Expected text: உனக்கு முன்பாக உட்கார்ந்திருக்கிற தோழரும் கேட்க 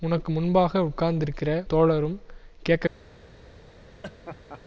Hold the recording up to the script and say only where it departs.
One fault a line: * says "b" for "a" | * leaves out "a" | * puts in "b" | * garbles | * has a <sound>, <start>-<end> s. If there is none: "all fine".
* has a laugh, 4.0-4.6 s